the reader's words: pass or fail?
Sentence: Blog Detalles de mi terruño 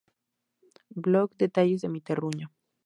pass